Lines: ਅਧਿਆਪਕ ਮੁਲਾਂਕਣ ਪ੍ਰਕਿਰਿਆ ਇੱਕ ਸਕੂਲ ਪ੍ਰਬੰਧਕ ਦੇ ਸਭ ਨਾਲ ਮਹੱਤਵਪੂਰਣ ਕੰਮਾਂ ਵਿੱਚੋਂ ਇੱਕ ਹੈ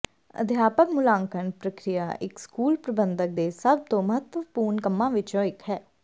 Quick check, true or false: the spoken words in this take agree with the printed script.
false